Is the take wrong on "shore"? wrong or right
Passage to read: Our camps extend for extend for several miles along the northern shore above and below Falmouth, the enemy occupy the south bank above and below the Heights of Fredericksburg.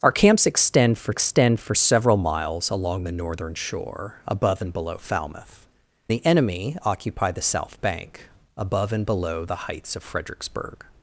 right